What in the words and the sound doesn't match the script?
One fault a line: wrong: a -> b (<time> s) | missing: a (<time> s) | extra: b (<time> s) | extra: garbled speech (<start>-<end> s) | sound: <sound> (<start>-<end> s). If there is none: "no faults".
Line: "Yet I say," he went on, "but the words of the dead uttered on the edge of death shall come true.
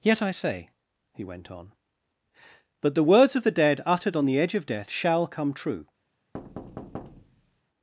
sound: thud (6.3-7.6 s)